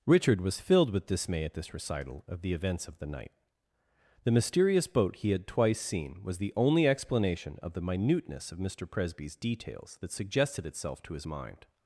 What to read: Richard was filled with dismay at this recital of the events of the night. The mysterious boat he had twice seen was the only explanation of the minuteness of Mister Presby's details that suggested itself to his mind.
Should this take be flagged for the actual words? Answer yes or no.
no